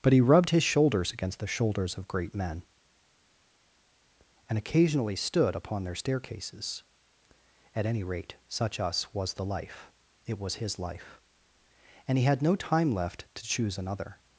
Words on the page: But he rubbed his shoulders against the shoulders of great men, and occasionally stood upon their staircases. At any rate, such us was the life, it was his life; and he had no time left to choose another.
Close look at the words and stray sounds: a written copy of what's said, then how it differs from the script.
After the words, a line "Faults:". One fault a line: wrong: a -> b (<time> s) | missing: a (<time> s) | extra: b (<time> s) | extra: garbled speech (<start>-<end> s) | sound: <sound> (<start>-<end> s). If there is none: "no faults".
But he rubbed his shoulders against the shoulders of great men, and occasionally stood upon their staircases. At any rate, such us was the life, it was his life; and he had no time left to choose another.
Faults:
no faults